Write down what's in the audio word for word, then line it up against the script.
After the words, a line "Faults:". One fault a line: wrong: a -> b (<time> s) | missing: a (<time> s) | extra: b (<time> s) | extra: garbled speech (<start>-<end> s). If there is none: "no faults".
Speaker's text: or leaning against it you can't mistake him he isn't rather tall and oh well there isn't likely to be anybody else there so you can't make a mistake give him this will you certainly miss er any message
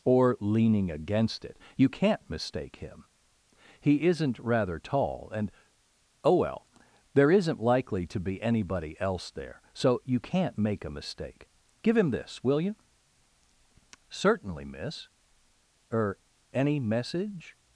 or leaning against it you can't mistake him he isn't rather tall and oh well there isn't likely to be anybody else there so you can't make a mistake give him this will you certainly miss er any message
Faults:
no faults